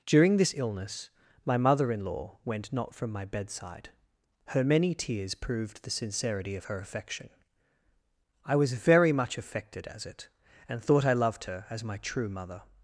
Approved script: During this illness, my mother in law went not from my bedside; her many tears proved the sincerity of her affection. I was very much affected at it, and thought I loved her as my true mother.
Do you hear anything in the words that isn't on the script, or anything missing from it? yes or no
yes